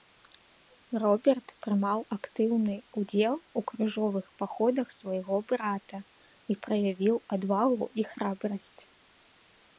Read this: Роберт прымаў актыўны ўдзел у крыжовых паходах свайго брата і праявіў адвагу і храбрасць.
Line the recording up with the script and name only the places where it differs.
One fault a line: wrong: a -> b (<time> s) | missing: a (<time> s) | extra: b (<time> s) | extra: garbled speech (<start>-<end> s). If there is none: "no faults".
no faults